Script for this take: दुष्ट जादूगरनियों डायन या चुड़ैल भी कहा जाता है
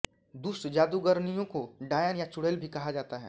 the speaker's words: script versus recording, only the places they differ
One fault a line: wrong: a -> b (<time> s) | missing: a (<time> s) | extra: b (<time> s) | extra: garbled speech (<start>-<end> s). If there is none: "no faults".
extra: को (1.4 s)